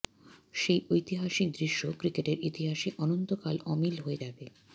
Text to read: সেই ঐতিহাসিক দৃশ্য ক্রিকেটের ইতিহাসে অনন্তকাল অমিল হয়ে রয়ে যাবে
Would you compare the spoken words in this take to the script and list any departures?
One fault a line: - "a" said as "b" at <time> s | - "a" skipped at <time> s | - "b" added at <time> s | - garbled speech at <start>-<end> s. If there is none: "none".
- "রয়ে" skipped at 4.2 s